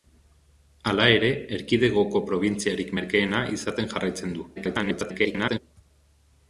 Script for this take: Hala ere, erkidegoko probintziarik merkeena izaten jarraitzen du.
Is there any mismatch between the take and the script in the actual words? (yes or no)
yes